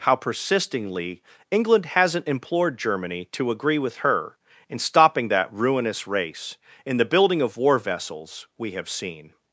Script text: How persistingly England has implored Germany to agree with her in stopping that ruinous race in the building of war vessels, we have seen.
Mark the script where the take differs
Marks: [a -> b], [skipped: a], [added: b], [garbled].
How persistingly England [has -> hasn't] implored Germany to agree with her in stopping that ruinous race in the building of war vessels, we have seen.